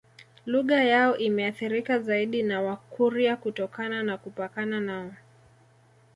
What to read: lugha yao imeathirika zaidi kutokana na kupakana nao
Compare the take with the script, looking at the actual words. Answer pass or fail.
fail